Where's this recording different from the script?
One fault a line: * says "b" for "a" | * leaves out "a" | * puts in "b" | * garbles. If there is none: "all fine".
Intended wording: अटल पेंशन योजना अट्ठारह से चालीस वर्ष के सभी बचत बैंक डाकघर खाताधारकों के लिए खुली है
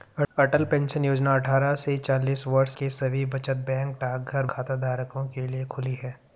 all fine